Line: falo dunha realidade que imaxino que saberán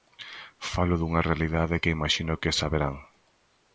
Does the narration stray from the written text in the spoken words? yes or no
no